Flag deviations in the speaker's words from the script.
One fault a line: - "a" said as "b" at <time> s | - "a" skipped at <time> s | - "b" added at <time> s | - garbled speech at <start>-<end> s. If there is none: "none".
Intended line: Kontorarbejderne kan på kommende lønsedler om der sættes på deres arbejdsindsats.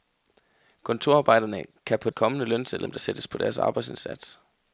none